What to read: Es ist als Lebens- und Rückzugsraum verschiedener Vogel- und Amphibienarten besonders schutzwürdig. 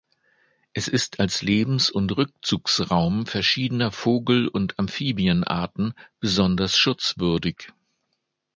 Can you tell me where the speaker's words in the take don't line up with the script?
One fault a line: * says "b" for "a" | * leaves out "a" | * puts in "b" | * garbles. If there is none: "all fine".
all fine